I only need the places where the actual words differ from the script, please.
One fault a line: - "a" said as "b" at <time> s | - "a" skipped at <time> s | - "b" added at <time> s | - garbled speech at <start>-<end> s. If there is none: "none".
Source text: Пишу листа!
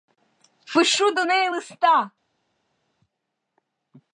- "до неї" added at 1.1 s